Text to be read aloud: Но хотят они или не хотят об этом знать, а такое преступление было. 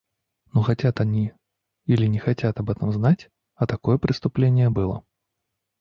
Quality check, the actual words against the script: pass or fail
pass